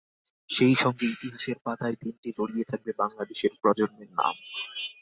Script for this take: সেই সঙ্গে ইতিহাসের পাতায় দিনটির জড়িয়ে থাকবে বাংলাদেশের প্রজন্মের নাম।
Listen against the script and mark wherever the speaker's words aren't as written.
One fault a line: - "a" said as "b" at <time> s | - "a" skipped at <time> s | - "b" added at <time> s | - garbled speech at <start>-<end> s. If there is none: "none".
none